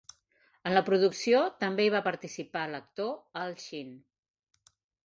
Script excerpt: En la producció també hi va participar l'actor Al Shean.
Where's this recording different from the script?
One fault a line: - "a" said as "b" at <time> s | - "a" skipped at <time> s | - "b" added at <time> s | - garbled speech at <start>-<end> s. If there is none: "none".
none